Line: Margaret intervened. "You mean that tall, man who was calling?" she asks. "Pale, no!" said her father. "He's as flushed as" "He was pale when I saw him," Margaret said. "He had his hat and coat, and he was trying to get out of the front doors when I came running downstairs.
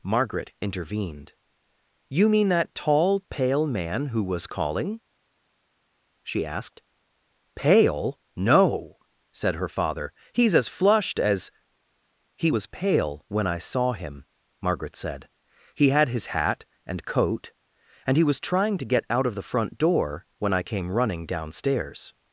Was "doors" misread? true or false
true